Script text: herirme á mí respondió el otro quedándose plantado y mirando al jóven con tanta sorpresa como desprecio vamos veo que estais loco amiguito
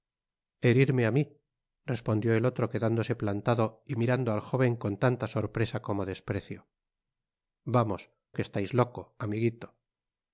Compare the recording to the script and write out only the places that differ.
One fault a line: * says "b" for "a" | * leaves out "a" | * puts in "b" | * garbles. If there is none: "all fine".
* leaves out "veo"